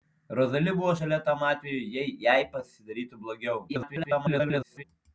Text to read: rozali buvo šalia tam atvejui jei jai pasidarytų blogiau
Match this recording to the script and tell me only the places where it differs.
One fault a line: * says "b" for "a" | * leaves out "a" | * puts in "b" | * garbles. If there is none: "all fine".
* garbles